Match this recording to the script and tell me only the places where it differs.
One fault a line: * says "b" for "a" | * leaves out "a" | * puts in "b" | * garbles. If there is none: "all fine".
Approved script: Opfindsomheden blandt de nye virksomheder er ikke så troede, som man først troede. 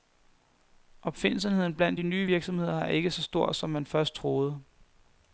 * says "stor" for "troede"